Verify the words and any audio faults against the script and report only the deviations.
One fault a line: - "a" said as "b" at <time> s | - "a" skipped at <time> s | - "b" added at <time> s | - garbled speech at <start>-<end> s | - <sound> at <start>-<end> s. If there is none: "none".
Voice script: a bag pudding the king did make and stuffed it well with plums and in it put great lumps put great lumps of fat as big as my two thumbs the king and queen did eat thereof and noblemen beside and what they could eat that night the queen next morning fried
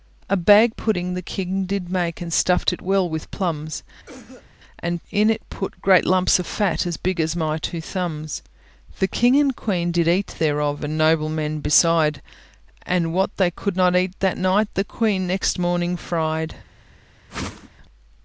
- cough at 4.1-4.5 s
- "put great lumps" skipped at 6.4 s
- "not" added at 13.8 s
- whoosh at 17.3-17.7 s